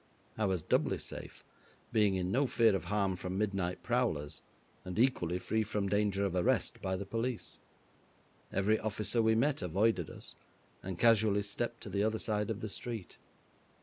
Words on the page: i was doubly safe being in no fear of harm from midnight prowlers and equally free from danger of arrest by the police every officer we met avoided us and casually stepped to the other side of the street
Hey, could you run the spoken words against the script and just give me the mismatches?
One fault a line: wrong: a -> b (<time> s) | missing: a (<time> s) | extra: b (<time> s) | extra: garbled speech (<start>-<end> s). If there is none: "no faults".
no faults